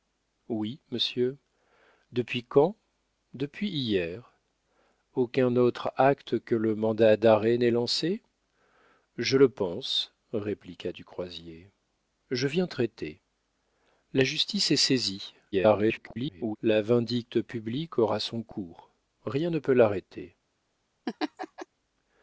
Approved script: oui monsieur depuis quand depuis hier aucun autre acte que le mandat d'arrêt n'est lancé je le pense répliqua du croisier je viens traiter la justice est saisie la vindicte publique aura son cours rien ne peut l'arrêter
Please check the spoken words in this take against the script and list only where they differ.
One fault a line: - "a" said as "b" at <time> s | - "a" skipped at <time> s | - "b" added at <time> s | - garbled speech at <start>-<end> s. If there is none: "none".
- garbled speech at 15.5-16.6 s